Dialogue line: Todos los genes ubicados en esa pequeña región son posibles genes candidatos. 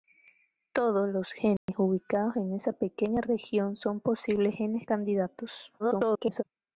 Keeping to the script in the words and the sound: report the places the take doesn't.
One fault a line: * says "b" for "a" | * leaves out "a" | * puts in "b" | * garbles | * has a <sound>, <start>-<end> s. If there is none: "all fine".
* has a dropout, 1.6-1.7 s
* garbles